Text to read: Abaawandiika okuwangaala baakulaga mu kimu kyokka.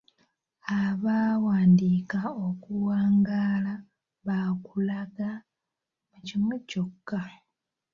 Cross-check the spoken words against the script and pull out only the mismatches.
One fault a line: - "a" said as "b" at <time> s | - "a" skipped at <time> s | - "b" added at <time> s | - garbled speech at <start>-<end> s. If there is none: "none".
none